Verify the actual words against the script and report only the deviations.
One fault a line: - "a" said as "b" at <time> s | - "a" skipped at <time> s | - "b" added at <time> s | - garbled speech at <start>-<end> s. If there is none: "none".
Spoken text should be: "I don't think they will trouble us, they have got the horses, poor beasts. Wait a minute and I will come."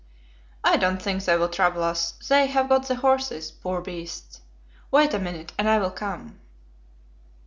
none